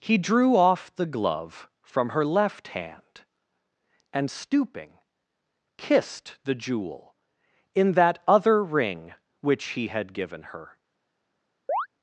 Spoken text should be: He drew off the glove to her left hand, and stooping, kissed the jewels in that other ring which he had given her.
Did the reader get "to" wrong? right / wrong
wrong